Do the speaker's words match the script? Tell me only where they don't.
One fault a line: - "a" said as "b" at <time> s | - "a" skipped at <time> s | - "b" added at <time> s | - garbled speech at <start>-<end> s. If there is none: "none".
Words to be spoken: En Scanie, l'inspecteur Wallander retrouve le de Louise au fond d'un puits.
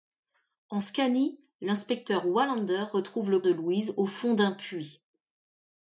none